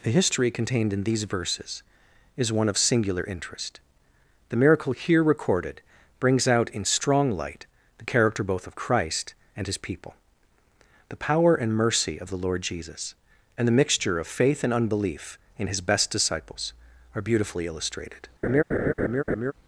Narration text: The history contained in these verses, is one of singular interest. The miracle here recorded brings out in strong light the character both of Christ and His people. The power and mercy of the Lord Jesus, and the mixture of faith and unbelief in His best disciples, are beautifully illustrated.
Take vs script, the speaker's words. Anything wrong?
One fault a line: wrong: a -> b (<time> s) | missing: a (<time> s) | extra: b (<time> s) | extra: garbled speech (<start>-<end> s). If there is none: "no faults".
no faults